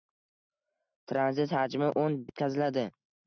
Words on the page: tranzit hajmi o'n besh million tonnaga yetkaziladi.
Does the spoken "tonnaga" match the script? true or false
false